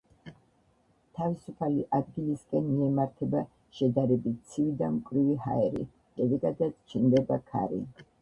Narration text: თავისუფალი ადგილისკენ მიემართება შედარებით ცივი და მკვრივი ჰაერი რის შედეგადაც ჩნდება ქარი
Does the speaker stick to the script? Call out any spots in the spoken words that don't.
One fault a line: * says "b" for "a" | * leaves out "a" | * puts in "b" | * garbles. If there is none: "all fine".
* leaves out "რის"